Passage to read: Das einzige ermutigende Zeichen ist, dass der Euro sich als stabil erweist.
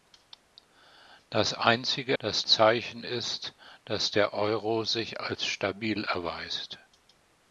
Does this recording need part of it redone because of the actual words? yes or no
yes